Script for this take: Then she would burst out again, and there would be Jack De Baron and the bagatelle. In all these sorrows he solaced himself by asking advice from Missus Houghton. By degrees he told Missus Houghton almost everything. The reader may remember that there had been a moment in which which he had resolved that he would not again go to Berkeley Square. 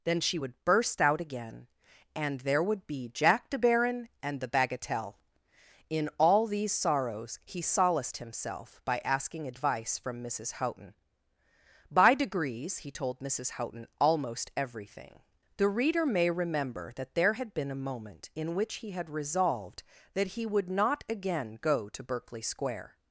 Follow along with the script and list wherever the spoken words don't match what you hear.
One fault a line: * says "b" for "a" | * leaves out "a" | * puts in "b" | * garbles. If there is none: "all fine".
* leaves out "which"